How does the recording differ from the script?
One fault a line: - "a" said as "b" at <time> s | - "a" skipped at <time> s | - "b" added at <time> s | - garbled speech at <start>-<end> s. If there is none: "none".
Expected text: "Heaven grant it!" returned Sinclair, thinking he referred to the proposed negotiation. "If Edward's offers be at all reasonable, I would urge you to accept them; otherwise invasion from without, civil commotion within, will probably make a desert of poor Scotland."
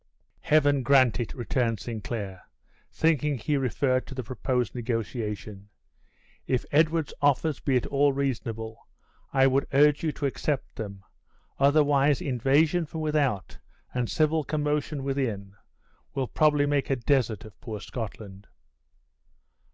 - "and" added at 13.9 s